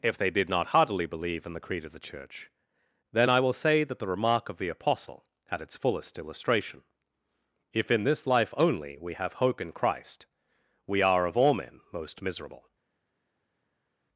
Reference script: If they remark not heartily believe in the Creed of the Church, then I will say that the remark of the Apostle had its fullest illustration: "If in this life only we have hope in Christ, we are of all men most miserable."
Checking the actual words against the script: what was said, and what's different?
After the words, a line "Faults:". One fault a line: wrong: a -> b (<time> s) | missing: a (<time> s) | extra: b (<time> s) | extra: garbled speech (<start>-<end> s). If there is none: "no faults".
If they did not heartily believe in the Creed of the Church, then I will say that the remark of the Apostle had its fullest illustration: "If in this life only we have hope in Christ, we are of all men most miserable."
Faults:
wrong: remark -> did (0.3 s)